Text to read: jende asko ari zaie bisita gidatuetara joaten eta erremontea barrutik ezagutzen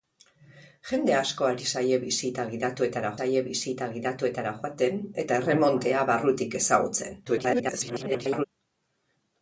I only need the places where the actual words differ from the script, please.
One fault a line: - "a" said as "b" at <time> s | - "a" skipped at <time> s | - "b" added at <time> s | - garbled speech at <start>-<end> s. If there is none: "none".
- "zaie bisita gidatuetara" added at 3.2 s
- garbled speech at 7.2-8.4 s